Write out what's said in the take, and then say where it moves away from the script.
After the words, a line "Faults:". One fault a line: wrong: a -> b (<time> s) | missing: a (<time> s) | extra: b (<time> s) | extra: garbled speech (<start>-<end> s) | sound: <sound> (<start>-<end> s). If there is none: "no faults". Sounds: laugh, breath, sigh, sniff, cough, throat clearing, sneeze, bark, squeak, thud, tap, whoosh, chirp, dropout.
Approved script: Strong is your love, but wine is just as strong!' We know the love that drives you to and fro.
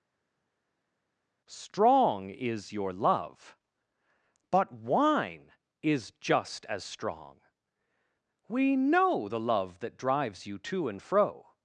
Strong is your love, but wine is just as strong!' We know the love that drives you to and fro.
Faults:
no faults